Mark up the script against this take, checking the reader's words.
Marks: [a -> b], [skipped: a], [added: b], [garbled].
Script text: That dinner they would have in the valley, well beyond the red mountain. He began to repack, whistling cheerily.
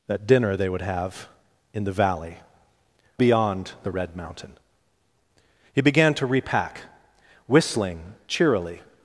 That dinner they would have in the valley, [skipped: well] beyond the red mountain. He began to repack, whistling cheerily.